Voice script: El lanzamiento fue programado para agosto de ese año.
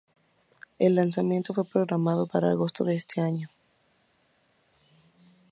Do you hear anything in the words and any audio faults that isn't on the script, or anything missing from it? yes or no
no